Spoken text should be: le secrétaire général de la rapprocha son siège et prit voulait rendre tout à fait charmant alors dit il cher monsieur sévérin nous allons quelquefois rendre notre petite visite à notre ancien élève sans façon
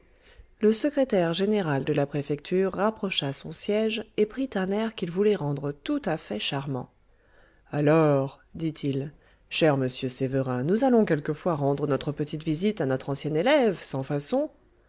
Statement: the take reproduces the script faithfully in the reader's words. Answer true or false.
false